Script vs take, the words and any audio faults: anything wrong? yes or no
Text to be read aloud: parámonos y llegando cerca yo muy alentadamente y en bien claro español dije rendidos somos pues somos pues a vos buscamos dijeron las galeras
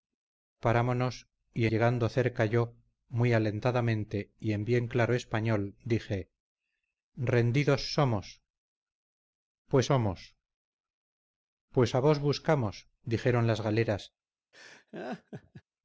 yes